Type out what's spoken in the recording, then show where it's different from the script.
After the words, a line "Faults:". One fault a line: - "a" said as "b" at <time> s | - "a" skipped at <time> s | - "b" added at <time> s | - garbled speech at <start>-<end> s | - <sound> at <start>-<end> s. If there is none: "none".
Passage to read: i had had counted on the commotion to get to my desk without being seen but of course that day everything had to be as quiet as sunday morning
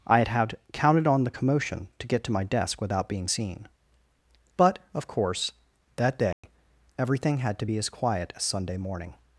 i had had counted on the commotion to get to my desk without being seen but of course that day everything had to be as quiet as sunday morning
Faults:
- dropout at 6.3-6.4 s